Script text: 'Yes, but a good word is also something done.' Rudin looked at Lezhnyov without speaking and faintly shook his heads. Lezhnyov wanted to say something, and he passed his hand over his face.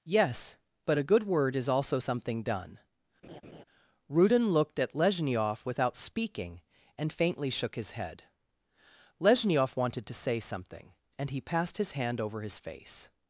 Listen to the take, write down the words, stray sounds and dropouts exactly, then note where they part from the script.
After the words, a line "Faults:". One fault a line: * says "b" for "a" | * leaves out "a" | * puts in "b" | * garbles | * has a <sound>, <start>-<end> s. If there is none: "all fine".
'Yes, but a good word is also something done.' Rudin looked at Lezhnyov without speaking and faintly shook his head. Lezhnyov wanted to say something, and he passed his hand over his face.
Faults:
* has a laugh, 3.2-3.6 s
* says "head" for "heads"